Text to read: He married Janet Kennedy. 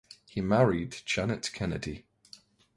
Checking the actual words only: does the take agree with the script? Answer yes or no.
yes